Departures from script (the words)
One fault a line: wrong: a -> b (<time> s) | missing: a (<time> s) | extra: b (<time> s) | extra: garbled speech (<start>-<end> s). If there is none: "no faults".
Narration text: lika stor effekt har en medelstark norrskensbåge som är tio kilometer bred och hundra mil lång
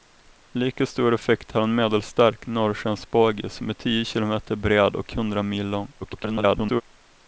extra: garbled speech (6.0-6.8 s)